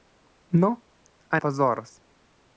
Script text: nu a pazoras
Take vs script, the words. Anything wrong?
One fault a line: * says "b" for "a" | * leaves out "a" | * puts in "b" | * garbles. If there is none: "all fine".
all fine